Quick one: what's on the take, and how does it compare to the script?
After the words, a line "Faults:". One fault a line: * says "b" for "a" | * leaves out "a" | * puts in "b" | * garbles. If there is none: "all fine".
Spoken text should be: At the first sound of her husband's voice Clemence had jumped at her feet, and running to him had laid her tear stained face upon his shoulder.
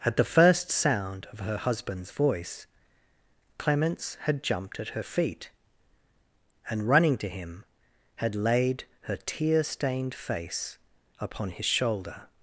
At the first sound of her husband's voice Clemence had jumped at her feet, and running to him had laid her tear stained face upon his shoulder.
Faults:
all fine